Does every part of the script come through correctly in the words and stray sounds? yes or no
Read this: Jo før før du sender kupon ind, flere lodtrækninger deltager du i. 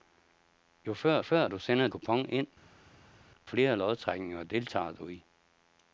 yes